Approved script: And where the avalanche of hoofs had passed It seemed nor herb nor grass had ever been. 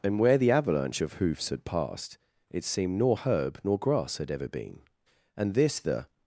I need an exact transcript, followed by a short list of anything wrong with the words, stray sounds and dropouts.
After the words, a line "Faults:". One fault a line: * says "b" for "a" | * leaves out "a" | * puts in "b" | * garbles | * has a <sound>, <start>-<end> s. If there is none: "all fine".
And where the avalanche of hoofs had passed It seemed nor herb nor grass had ever been. And this the
Faults:
* puts in "And this the"